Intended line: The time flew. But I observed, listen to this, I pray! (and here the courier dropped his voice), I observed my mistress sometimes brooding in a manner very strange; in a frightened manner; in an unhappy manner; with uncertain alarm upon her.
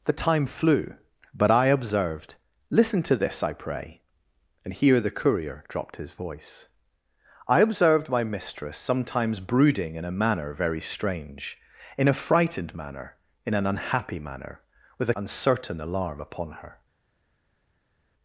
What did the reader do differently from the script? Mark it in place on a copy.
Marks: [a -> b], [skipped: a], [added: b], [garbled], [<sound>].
The time flew. But I observed, listen to this, I pray! (and here the courier dropped his voice), I observed my mistress sometimes brooding in a manner very strange; in a frightened manner; in an unhappy manner; with uncertain alarm upon her.